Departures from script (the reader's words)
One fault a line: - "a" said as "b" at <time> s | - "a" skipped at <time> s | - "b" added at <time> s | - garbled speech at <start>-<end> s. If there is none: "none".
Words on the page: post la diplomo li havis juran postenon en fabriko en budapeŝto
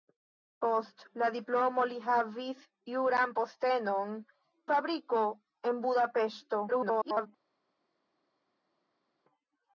- "en" skipped at 4.2 s
- garbled speech at 6.7-7.3 s